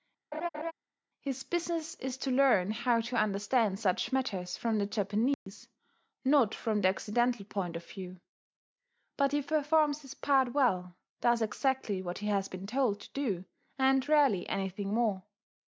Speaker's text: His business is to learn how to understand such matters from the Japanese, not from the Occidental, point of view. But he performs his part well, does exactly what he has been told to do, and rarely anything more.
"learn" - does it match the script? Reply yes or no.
yes